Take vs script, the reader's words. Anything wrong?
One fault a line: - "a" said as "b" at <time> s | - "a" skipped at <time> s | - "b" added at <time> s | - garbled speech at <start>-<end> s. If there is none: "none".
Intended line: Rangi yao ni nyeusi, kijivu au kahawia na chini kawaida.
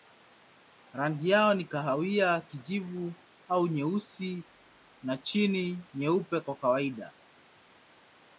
- "nyeusi" said as "kahawia" at 1.6 s
- "kahawia" said as "nyeusi" at 3.7 s
- "nyeupe kwa" added at 5.9 s